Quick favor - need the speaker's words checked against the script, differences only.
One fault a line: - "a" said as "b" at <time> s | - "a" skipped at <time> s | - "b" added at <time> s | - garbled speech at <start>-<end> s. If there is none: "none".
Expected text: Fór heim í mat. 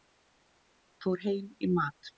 none